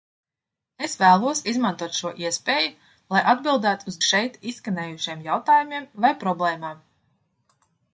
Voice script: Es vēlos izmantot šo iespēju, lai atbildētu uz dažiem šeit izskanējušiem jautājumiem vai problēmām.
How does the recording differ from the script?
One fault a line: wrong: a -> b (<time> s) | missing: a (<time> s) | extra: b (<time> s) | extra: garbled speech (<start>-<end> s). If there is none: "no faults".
missing: dažiem (4.0 s)